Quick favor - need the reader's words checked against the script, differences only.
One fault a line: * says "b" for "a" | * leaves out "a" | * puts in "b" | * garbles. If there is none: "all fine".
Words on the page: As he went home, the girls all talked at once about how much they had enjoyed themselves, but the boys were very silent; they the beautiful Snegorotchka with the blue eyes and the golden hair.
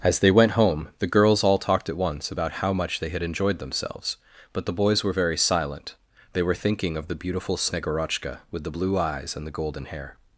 * says "they" for "he"
* puts in "were thinking of"